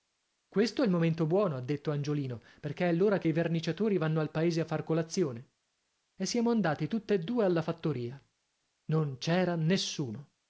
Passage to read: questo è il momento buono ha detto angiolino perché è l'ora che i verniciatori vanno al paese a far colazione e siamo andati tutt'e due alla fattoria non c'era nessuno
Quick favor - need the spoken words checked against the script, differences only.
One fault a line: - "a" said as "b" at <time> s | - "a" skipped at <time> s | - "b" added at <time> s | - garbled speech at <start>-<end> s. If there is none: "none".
none